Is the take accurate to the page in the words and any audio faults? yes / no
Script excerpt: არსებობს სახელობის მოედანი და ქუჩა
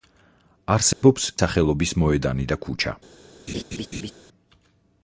no